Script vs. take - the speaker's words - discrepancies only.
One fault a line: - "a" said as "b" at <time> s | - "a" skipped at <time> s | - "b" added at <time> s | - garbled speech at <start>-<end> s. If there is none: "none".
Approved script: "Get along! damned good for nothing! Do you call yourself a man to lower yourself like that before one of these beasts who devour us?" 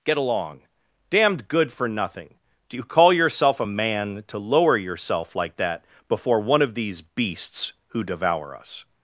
none